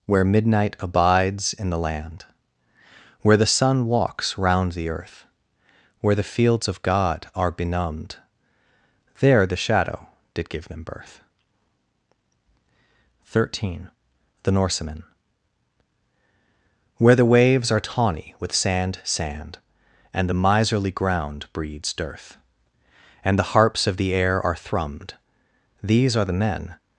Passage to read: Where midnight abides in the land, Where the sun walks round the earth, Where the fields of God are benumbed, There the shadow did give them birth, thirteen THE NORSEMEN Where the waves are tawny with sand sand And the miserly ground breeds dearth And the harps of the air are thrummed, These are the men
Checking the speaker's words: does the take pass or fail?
pass